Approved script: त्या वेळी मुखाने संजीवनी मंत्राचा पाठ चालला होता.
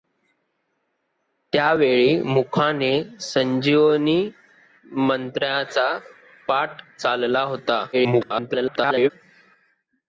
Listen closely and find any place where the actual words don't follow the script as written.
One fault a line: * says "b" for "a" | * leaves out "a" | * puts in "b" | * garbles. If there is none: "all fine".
* garbles